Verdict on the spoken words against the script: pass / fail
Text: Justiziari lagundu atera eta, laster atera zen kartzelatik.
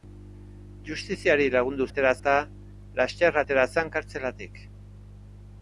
pass